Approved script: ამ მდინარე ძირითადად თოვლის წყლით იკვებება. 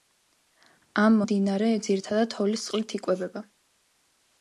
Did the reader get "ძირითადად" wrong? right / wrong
right